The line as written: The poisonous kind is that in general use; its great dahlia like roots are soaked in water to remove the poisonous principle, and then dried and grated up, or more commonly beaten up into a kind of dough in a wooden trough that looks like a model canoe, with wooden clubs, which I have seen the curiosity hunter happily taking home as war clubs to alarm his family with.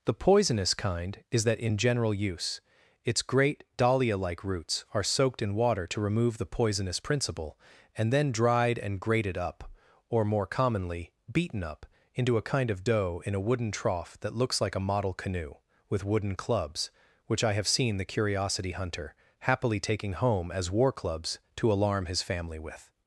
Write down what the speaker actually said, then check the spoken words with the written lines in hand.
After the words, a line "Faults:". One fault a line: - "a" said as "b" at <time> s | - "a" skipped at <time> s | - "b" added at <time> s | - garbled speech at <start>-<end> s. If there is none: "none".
The poisonous kind is that in general use; its great dahlia like roots are soaked in water to remove the poisonous principle, and then dried and grated up, or more commonly beaten up into a kind of dough in a wooden trough that looks like a model canoe, with wooden clubs, which I have seen the curiosity hunter happily taking home as war clubs to alarm his family with.
Faults:
none